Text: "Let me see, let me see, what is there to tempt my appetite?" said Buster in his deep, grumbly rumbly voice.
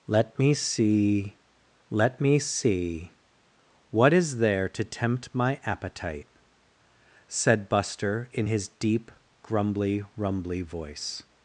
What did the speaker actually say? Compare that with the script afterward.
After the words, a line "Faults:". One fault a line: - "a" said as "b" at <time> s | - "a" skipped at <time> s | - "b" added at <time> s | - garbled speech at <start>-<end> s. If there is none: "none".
"Let me see, let me see, what is there to tempt my appetite?" said Buster in his deep, grumbly rumbly voice.
Faults:
none